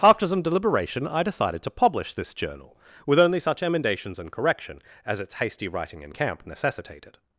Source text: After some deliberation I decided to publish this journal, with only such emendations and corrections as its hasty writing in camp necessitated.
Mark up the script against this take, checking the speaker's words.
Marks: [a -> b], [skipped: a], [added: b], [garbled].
After some deliberation I decided to publish this journal, with only such emendations and [corrections -> correction] as its hasty writing in camp necessitated.